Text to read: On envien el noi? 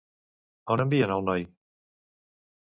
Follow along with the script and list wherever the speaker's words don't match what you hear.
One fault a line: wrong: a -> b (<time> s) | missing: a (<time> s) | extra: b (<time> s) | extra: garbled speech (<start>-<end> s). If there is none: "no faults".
no faults